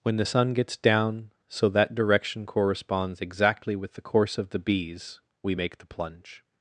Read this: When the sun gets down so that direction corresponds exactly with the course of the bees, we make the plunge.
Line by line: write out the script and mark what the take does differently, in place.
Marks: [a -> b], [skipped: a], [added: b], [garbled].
When the sun gets down so that direction corresponds exactly with the course of the bees, we make the plunge.